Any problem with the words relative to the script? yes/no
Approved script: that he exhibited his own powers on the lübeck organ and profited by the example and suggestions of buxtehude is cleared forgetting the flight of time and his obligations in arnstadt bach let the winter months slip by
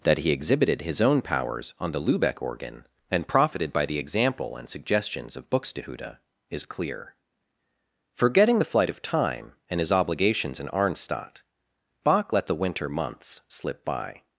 yes